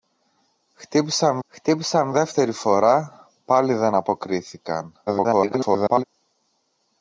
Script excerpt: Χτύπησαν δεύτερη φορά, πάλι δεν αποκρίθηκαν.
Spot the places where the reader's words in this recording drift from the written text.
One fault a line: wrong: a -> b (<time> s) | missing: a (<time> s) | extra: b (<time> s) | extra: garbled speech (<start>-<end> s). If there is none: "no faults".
extra: χτύπησαν (1.5 s)
extra: garbled speech (5.1-6.0 s)